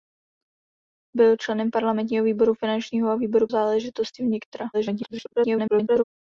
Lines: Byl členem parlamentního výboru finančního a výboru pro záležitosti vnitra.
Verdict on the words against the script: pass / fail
fail